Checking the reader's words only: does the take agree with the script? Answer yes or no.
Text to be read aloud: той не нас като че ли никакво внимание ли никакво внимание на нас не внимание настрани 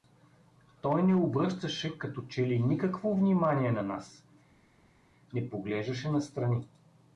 no